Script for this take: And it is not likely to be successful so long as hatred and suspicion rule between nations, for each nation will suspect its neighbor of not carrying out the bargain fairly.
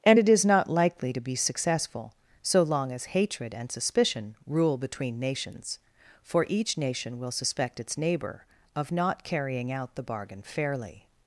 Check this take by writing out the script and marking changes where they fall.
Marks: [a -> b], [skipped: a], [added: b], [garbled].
And it is not likely to be successful so long as hatred and suspicion rule between nations, for each nation will suspect its neighbor of not carrying out the bargain fairly.